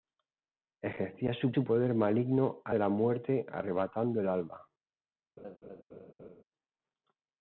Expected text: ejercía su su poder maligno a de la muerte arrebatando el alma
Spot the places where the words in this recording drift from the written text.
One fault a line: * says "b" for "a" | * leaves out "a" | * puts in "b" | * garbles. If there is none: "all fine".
all fine